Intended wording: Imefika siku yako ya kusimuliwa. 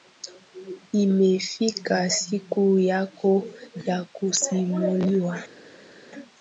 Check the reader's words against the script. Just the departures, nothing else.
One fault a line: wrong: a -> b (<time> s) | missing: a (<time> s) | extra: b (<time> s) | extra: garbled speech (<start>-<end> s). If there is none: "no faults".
no faults